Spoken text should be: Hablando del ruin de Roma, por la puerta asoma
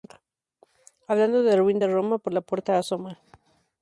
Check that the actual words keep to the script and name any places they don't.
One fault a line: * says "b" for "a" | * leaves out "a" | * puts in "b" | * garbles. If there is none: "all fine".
all fine